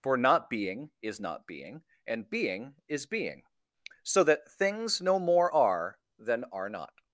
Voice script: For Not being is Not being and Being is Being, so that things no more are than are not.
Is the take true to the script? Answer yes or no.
yes